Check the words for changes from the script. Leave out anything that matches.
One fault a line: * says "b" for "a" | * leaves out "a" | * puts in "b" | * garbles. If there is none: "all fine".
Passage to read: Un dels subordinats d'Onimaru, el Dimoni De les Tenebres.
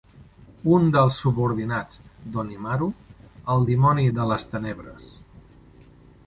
all fine